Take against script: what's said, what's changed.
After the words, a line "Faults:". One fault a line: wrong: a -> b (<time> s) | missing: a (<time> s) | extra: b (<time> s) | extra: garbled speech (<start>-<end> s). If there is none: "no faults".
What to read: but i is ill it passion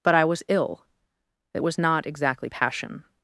but i was ill it was not exactly passion
Faults:
wrong: is -> was (0.2 s)
extra: was not exactly (1.6 s)